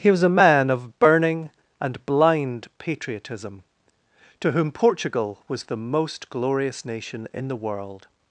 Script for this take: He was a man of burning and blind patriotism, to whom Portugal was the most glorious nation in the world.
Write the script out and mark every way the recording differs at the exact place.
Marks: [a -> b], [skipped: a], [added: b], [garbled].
He was a man of burning and blind patriotism, to whom Portugal was the most glorious nation in the world.